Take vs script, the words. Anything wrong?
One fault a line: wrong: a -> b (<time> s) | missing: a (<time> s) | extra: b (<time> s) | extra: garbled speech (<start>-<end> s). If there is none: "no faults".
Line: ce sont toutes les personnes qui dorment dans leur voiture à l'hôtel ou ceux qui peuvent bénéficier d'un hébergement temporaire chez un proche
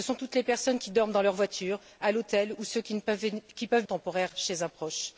missing: bénéficier d'un hébergement (3.8 s)